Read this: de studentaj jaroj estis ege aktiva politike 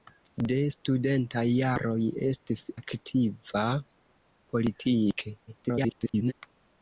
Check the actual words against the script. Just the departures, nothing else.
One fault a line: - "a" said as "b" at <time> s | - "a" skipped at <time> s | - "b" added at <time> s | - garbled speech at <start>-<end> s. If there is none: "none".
- "ege" skipped at 2.6 s
- garbled speech at 5.5-6.3 s